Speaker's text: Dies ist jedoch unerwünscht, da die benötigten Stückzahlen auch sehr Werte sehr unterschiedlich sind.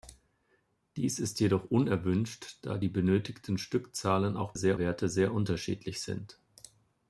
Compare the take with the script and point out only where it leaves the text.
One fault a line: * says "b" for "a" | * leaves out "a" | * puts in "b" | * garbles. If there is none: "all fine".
all fine